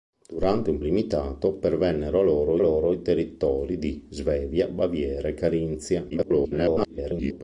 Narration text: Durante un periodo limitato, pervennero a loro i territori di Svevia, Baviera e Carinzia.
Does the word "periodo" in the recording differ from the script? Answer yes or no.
yes